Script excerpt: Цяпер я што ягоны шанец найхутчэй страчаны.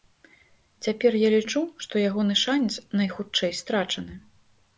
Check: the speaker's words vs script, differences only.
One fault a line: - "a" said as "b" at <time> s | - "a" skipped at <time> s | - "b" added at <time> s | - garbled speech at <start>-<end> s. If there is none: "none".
- "лічу" added at 1.4 s